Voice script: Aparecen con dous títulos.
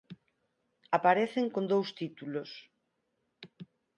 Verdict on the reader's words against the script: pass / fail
pass